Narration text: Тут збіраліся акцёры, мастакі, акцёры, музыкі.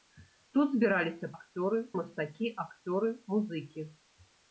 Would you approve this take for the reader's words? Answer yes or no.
yes